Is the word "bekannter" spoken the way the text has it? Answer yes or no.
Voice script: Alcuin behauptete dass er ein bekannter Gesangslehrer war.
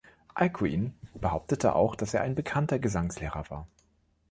yes